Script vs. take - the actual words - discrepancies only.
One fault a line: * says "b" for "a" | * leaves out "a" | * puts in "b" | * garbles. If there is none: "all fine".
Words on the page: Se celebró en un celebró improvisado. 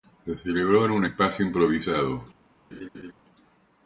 * says "espacio" for "celebró"